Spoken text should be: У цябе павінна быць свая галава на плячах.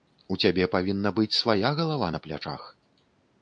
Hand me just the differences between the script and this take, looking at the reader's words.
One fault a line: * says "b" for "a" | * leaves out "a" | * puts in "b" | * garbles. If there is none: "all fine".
all fine